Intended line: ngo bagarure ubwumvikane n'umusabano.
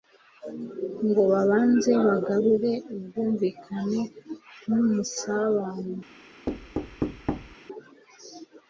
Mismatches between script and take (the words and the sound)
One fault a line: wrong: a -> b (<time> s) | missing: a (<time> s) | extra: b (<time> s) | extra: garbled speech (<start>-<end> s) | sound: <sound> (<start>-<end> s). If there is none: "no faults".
extra: babanze (1.3 s)
sound: thud (6.5-7.6 s)